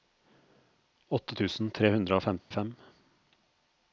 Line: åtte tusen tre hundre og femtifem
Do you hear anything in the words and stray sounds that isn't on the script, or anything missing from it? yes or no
yes